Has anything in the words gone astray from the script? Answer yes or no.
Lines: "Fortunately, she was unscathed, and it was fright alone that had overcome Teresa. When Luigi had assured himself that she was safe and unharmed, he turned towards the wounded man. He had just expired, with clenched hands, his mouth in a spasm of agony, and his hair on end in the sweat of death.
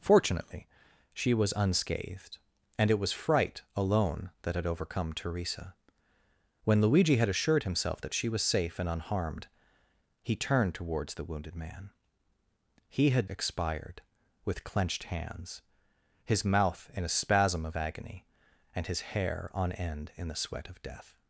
yes